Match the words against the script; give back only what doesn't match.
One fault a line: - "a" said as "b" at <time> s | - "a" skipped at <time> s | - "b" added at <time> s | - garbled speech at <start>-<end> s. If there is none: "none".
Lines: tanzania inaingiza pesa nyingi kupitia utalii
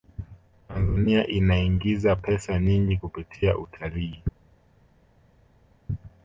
none